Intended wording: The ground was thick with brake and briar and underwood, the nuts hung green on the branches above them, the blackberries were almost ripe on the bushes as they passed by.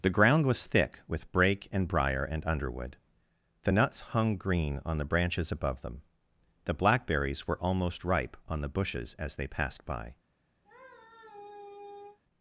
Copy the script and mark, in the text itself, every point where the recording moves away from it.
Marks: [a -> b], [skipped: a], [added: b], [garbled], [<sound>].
The ground was thick with brake and briar and underwood, the nuts hung green on the branches above them, the blackberries were almost ripe on the bushes as they passed by. [sigh]